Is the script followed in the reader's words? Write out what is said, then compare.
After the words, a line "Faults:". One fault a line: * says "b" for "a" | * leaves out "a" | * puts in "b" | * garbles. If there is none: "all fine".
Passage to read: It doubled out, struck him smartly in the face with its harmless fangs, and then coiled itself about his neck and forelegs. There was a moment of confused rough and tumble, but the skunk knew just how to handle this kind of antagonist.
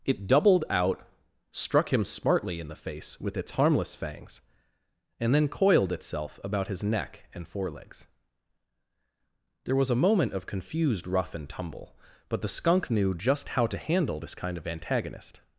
It doubled out, struck him smartly in the face with its harmless fangs, and then coiled itself about his neck and forelegs. There was a moment of confused rough and tumble, but the skunk knew just how to handle this kind of antagonist.
Faults:
all fine